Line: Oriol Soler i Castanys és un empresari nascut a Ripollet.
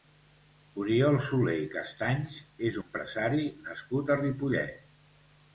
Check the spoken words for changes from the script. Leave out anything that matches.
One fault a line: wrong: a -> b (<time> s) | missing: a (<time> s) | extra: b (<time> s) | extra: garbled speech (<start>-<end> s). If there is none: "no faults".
missing: un (2.8 s)